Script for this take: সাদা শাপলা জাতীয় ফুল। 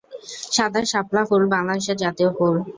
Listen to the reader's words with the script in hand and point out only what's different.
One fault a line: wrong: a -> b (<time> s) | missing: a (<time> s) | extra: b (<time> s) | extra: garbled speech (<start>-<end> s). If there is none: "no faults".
extra: ফুল বাংলাদেশের (1.3 s)